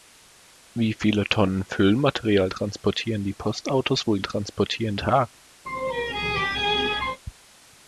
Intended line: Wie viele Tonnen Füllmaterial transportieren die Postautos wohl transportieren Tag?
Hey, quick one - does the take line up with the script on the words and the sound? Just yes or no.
no